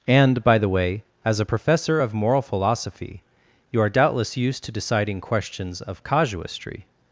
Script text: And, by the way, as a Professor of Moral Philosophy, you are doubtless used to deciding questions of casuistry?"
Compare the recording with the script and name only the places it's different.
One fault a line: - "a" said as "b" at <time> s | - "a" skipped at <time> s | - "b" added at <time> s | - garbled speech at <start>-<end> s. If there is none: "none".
none